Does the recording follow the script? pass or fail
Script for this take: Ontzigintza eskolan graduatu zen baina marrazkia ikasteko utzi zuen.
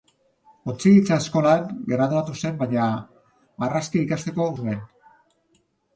fail